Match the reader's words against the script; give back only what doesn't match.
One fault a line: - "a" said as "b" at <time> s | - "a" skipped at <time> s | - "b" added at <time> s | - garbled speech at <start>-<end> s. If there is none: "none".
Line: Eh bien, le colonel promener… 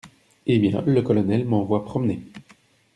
- "m'envoie" added at 1.4 s